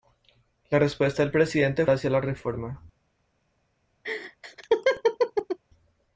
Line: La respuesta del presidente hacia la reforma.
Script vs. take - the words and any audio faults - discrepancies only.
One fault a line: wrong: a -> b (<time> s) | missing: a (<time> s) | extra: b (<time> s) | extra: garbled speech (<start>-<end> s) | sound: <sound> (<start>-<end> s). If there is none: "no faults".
sound: laugh (4.0-5.6 s)